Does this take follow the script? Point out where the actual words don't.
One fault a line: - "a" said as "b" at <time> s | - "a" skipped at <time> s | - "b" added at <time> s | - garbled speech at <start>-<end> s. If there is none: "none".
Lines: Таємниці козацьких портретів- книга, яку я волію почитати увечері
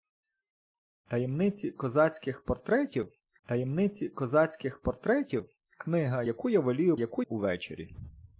- "таємниці козацьких портретів" added at 3.5 s
- "почитати" said as "яку" at 6.9 s